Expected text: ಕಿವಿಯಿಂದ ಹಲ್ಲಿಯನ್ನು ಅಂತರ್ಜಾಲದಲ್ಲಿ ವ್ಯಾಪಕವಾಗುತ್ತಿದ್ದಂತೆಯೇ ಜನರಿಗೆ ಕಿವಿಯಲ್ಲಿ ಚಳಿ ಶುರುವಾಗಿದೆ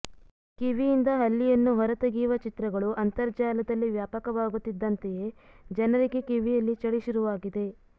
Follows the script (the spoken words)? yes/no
no